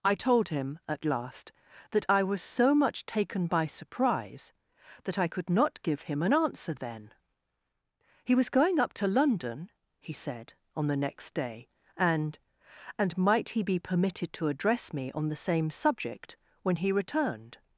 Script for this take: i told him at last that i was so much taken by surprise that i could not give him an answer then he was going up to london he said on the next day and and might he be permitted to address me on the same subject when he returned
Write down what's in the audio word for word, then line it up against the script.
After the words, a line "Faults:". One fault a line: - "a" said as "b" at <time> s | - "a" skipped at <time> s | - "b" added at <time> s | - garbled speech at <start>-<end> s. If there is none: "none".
i told him at last that i was so much taken by surprise that i could not give him an answer then he was going up to london he said on the next day and and might he be permitted to address me on the same subject when he returned
Faults:
none